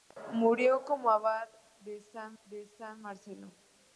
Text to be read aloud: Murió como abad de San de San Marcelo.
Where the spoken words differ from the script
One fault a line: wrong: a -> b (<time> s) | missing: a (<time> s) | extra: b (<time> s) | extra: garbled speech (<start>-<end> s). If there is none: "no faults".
no faults